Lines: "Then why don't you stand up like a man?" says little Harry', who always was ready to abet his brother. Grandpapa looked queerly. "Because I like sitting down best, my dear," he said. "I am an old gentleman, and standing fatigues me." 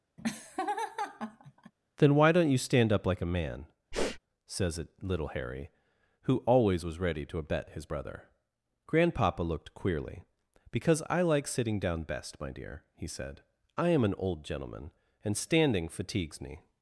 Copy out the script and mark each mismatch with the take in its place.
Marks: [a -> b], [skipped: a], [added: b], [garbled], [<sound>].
[laugh] "Then why don't you stand up like a man?" [sniff] says [added: it] little Harry', who always was ready to abet his brother. Grandpapa looked queerly. "Because I like sitting down best, my dear," he said. "I am an old gentleman, and standing fatigues me."